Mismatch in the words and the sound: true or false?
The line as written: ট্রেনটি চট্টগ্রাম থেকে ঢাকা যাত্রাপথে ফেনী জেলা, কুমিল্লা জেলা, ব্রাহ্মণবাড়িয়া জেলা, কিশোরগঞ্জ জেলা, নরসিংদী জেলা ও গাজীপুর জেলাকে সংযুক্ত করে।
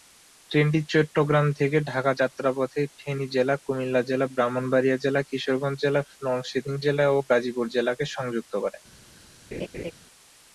true